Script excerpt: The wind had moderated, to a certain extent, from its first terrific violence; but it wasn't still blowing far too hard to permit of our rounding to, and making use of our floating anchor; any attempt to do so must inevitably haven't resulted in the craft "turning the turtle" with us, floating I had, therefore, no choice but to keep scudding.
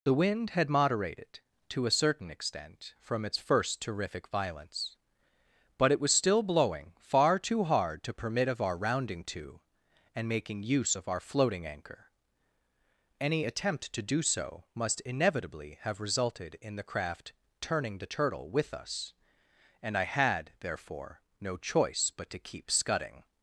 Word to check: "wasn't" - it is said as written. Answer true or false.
false